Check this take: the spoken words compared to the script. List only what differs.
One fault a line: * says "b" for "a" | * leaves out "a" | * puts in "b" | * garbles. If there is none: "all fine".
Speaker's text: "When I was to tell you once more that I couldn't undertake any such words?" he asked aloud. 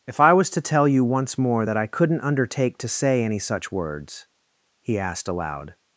* says "If" for "When"
* puts in "to say"